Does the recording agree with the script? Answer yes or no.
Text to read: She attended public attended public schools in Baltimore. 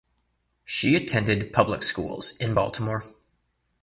no